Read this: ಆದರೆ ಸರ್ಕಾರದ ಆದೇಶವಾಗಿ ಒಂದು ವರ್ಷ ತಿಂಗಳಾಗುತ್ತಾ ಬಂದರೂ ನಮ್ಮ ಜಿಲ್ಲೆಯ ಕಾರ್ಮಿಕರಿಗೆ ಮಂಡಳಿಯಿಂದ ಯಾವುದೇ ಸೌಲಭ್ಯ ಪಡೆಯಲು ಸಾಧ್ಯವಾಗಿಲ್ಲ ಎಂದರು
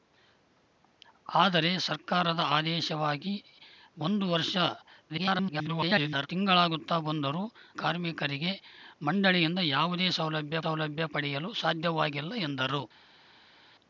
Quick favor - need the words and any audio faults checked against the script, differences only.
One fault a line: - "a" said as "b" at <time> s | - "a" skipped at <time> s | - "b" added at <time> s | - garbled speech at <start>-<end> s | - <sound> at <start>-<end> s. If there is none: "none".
- garbled speech at 5.1-6.3 s
- "ನಮ್ಮ ಜಿಲ್ಲೆಯ" skipped at 7.4 s
- "ಸೌಲಭ್ಯ" added at 10.6 s